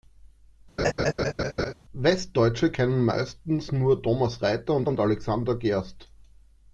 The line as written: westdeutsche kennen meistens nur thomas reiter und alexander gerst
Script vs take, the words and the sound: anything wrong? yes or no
yes